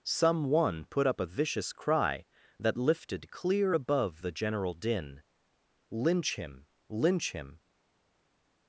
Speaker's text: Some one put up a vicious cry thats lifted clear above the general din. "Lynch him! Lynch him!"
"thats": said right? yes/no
no